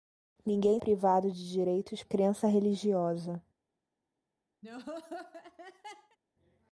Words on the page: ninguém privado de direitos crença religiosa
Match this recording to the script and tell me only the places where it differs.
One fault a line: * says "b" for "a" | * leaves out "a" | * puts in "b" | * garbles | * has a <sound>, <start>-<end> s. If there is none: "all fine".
* has a laugh, 4.6-6.2 s